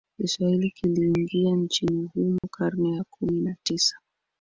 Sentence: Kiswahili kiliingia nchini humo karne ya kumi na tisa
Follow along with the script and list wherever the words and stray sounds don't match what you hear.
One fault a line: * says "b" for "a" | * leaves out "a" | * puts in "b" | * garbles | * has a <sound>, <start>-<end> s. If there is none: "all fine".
* has a dropout, 2.4-2.4 s